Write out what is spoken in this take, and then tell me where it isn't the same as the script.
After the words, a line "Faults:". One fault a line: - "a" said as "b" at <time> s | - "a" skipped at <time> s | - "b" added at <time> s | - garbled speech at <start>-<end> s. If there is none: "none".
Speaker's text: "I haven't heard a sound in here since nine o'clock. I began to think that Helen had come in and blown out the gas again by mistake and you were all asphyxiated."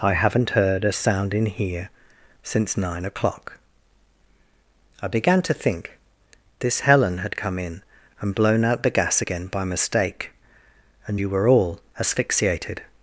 "I haven't heard a sound in here since nine o'clock. I began to think this Helen had come in and blown out the gas again by mistake and you were all asphyxiated."
Faults:
- "that" said as "this" at 6.6 s